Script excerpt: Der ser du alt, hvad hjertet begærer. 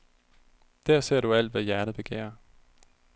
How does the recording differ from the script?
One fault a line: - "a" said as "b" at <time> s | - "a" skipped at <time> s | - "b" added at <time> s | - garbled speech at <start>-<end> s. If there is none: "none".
none